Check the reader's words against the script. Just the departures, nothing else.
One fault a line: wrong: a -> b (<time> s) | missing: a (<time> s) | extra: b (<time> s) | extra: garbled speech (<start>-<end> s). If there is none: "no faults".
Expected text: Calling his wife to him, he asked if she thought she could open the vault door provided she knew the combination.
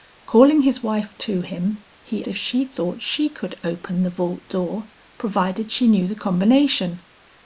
missing: asked (2.2 s)